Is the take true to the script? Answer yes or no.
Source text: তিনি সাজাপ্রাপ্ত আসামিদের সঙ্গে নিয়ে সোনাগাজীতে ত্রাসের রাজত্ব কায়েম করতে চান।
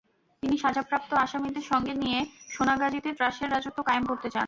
yes